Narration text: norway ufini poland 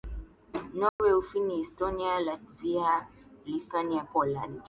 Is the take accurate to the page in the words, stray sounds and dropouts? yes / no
no